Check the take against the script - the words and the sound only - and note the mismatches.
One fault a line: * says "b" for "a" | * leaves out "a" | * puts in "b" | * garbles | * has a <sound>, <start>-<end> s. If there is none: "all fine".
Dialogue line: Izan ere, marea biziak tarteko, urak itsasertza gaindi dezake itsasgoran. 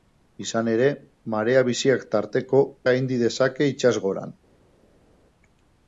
* leaves out "urak itsasertza"